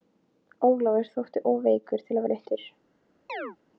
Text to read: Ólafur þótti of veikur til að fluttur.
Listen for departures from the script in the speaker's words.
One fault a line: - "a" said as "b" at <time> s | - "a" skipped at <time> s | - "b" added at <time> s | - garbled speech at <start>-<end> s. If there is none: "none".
none